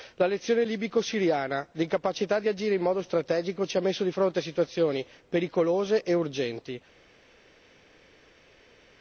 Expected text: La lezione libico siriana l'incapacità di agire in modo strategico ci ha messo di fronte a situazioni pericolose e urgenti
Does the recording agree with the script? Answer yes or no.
yes